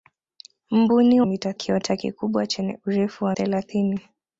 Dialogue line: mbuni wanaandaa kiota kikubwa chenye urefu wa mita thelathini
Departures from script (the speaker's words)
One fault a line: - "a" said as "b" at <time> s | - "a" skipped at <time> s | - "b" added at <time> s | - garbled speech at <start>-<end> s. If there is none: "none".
- "wanaandaa" said as "mita" at 1.2 s
- "mita" skipped at 3.3 s